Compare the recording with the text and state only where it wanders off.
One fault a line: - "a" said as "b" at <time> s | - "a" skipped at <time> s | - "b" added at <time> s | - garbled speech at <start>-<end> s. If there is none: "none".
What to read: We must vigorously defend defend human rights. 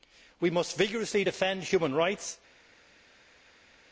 - "defend" skipped at 1.6 s